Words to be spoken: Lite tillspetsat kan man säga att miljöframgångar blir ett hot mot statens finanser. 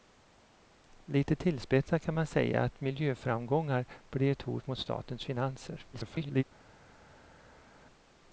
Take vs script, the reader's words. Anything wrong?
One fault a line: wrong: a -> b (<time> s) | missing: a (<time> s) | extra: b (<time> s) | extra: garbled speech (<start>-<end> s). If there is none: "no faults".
extra: garbled speech (5.9-6.4 s)